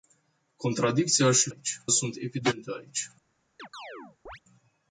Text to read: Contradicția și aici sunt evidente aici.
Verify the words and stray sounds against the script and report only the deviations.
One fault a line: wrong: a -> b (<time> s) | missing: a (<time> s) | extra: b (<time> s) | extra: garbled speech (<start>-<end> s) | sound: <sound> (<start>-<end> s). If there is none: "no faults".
sound: chirp (3.6-4.4 s)